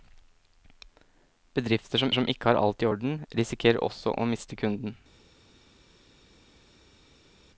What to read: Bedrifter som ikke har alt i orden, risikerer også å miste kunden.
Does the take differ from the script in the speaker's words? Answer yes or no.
yes